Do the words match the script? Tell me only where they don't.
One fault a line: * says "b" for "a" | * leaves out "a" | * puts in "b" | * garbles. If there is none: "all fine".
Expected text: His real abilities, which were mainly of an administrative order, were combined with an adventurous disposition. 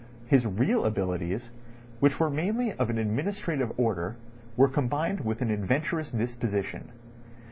all fine